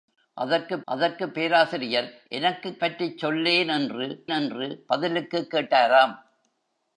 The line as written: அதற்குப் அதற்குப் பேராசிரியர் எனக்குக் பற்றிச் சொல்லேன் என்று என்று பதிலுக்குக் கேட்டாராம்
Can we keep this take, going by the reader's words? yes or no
yes